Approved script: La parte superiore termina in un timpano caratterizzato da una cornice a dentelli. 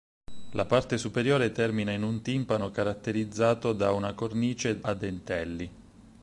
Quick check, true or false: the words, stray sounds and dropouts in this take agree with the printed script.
true